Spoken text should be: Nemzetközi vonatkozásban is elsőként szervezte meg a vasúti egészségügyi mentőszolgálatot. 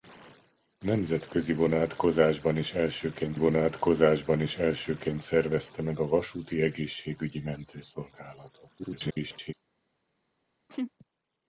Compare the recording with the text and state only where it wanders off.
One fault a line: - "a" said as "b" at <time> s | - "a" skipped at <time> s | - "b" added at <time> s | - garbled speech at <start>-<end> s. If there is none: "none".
- "vonatkozásban is elsőként" added at 3.4 s
- garbled speech at 8.8-9.5 s